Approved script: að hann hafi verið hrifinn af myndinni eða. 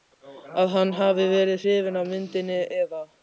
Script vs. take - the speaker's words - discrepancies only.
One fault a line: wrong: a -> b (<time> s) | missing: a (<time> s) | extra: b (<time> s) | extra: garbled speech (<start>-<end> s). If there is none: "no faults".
no faults